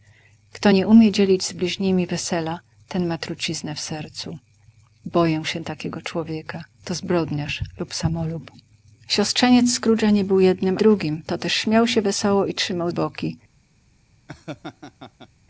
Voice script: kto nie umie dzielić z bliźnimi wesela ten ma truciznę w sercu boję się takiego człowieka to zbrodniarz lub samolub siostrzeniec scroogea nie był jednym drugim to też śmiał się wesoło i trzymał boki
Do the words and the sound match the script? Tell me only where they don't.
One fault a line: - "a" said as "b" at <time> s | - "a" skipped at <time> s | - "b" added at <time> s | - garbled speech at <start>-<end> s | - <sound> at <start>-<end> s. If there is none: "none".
- laugh at 14.3-15.3 s